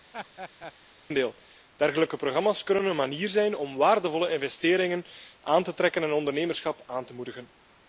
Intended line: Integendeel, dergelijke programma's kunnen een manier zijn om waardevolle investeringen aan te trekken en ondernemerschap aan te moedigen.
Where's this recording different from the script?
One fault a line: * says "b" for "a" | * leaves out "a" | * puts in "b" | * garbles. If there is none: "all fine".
all fine